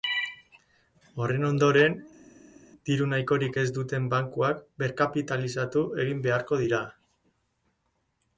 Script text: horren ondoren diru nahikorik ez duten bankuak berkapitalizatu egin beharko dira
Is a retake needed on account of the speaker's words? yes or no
no